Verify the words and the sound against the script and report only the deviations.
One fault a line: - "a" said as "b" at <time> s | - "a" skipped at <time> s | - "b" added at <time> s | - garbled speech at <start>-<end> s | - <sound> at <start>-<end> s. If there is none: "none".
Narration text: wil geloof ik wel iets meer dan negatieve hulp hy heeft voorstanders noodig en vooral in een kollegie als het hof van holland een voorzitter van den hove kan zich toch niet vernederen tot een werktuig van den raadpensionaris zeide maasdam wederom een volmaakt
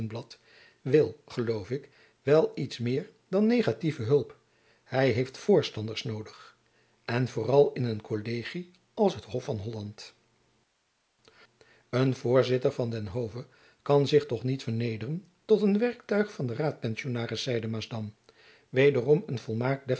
none